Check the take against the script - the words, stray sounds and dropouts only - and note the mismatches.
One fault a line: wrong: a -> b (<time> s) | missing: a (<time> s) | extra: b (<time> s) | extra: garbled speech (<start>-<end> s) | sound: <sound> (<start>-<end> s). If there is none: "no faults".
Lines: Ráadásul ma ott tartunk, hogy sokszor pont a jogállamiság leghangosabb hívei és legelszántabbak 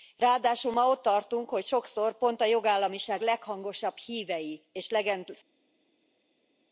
no faults